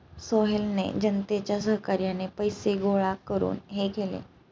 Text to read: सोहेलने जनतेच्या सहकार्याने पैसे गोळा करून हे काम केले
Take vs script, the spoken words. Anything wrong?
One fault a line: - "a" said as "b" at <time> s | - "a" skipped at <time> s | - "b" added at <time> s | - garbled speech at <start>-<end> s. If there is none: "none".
- "काम" skipped at 3.9 s